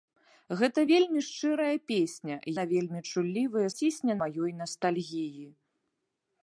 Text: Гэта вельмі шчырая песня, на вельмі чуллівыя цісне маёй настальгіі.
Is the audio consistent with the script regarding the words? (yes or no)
yes